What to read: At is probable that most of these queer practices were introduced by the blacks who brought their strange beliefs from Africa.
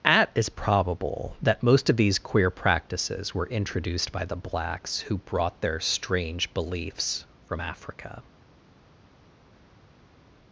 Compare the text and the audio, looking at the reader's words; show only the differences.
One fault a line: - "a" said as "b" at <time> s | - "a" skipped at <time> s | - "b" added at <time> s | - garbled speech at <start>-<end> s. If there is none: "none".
none